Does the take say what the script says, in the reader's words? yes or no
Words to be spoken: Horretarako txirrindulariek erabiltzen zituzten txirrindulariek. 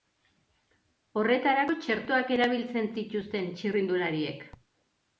no